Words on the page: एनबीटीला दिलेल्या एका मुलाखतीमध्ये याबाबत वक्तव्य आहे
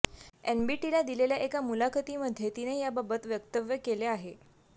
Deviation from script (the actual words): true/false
true